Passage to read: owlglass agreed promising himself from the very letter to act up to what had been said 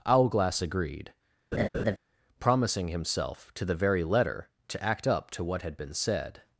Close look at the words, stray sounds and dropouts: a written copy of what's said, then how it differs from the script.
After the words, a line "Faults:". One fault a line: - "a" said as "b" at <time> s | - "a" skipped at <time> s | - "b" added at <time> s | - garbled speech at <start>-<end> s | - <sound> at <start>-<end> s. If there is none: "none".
owlglass agreed promising himself to the very letter to act up to what had been said
Faults:
- laugh at 1.5-2.0 s
- "from" said as "to" at 3.5 s